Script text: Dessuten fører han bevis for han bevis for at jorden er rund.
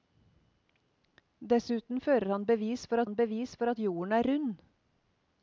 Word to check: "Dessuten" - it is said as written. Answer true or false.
true